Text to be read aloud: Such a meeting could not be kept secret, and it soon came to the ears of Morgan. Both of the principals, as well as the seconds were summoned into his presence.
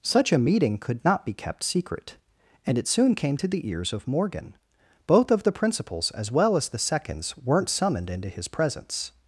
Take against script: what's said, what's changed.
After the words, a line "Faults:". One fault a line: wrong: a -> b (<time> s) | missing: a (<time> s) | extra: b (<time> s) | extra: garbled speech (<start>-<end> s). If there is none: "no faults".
Such a meeting could not be kept secret, and it soon came to the ears of Morgan. Both of the principals, as well as the seconds weren't summoned into his presence.
Faults:
wrong: were -> weren't (7.4 s)